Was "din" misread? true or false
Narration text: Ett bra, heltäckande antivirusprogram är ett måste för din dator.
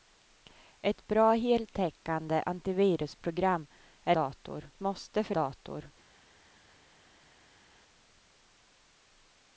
true